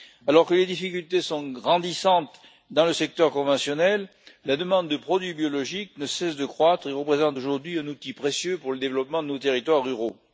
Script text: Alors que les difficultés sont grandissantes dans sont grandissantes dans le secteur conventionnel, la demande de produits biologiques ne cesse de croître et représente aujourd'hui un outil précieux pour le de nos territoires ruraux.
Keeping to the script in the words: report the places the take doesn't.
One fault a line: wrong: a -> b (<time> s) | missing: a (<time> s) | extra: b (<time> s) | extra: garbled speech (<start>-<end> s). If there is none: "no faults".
missing: sont grandissantes dans (2.9 s)
extra: développement (8.8 s)